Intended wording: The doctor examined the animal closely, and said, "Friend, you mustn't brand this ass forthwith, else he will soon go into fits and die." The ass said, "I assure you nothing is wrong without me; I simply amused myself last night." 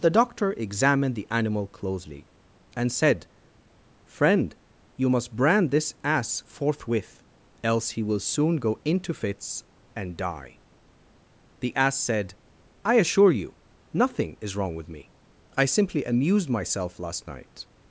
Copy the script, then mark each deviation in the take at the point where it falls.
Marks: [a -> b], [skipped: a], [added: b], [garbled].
The doctor examined the animal closely, and said, "Friend, you [mustn't -> must] brand this ass forthwith, else he will soon go into fits and die." The ass said, "I assure you nothing is wrong [without -> with] me; I simply amused myself last night."